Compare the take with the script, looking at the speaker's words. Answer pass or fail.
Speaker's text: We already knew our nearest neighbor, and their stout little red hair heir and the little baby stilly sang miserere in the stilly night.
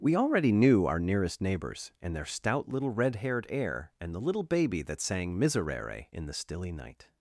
fail